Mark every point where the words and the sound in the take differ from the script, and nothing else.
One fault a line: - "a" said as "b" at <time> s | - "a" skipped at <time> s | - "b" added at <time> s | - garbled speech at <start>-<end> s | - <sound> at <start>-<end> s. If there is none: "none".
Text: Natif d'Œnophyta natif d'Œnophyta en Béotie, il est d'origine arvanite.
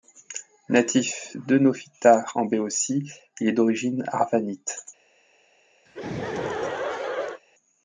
- "natif d'Œnophyta" skipped at 2.2 s
- laugh at 5.9-7.4 s